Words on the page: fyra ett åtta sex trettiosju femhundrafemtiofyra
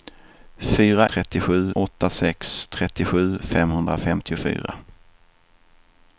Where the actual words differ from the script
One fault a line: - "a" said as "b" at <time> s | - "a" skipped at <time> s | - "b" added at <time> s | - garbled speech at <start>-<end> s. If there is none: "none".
- "ett" said as "trettiosju" at 1.0 s